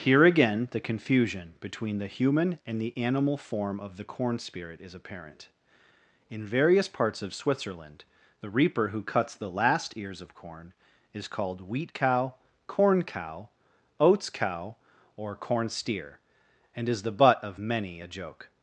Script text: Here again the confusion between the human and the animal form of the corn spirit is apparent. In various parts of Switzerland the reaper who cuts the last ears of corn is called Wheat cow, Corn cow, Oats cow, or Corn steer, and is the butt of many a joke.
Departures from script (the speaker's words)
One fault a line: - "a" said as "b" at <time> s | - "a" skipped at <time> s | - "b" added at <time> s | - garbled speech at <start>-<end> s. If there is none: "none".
none